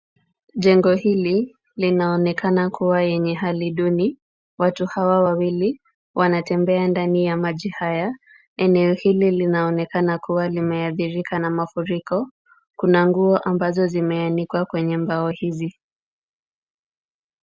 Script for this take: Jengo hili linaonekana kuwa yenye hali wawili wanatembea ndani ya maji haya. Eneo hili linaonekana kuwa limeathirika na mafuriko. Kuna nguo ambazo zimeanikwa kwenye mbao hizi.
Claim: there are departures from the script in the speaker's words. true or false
true